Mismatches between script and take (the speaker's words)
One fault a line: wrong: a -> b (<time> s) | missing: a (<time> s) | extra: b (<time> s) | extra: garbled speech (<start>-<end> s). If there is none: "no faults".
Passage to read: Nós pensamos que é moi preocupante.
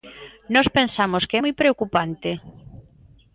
no faults